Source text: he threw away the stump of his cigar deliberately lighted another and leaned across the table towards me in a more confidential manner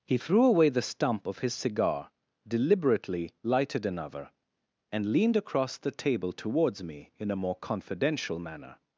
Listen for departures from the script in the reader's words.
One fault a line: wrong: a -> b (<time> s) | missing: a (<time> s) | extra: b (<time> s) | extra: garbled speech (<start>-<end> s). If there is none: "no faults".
no faults